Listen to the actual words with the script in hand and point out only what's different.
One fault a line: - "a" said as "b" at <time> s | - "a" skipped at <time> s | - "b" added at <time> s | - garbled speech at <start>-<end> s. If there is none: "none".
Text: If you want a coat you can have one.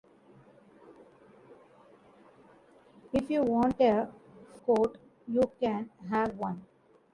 none